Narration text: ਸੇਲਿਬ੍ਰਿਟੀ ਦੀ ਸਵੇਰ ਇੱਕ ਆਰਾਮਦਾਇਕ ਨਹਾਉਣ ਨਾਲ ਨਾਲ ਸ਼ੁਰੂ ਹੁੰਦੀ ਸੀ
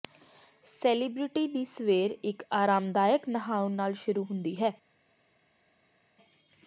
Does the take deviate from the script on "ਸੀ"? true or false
true